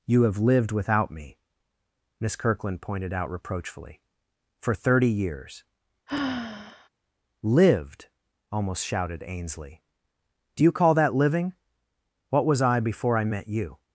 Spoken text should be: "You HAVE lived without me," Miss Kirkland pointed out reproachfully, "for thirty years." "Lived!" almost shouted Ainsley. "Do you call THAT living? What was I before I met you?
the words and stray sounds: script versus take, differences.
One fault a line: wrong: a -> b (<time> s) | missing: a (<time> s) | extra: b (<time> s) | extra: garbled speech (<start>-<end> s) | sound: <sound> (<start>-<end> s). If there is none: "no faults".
sound: sigh (6.1-6.9 s)